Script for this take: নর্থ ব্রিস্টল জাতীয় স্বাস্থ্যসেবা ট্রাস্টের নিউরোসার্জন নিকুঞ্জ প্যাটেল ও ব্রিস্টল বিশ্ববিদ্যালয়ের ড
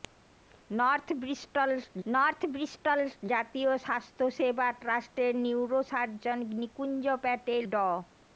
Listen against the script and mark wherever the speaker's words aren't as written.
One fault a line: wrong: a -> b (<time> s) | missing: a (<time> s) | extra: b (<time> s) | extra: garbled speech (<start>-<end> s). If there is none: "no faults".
extra: নর্থ ব্রিস্টল (2.0 s)
missing: ও ব্রিস্টল বিশ্ববিদ্যালয়ের (7.6 s)